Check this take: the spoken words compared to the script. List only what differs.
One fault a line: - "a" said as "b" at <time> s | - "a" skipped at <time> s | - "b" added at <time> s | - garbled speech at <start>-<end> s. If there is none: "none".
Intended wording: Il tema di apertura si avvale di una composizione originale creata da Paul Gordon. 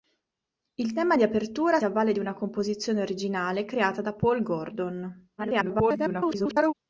- "si" skipped at 1.8 s
- garbled speech at 5.4-6.7 s